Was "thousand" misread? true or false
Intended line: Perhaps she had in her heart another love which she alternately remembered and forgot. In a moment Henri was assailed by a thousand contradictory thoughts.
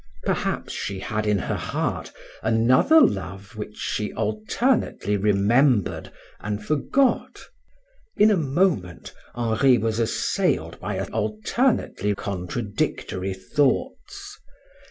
true